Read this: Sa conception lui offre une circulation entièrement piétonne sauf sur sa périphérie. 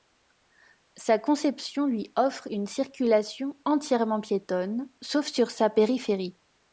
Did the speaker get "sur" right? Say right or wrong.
right